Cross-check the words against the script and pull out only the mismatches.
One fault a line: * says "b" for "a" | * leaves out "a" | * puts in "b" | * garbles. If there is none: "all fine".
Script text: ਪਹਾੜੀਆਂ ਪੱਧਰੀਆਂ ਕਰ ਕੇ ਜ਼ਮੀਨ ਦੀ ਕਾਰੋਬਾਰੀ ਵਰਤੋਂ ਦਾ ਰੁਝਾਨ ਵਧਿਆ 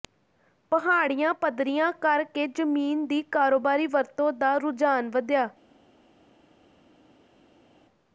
all fine